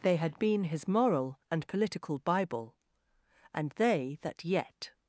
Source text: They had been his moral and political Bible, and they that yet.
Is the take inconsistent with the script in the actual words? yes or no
no